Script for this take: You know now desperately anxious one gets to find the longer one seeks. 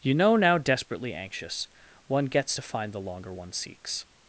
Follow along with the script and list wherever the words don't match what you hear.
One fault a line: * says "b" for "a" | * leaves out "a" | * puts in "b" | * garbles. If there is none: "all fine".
all fine